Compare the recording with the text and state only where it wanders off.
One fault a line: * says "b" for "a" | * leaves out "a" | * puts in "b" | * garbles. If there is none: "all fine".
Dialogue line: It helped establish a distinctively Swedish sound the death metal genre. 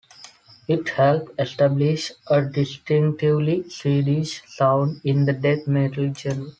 * puts in "in"